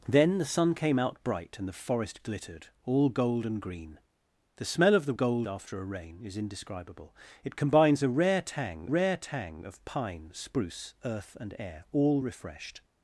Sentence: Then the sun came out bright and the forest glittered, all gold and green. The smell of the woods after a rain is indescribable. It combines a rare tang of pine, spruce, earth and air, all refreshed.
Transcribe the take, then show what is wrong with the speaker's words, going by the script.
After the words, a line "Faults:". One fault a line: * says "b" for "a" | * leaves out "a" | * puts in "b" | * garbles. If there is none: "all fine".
Then the sun came out bright and the forest glittered, all gold and green. The smell of the gold after a rain is indescribable. It combines a rare tang rare tang of pine, spruce, earth and air, all refreshed.
Faults:
* says "gold" for "woods"
* puts in "rare tang"